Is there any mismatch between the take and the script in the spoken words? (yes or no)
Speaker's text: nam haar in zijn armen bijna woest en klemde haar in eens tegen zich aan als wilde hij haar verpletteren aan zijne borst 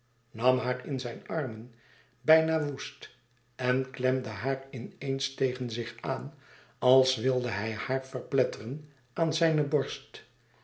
no